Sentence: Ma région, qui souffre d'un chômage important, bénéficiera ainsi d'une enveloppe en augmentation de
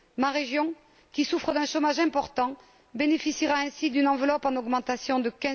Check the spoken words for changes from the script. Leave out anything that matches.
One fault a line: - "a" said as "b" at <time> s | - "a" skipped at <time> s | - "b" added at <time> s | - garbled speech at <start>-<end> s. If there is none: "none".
none